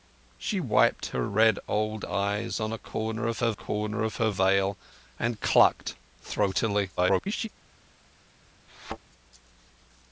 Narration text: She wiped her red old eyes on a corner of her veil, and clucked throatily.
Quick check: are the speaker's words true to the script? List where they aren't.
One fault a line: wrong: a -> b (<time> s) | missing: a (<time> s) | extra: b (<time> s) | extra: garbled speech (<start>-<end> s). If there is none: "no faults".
extra: corner of her (3.5 s)
extra: garbled speech (7.0-7.5 s)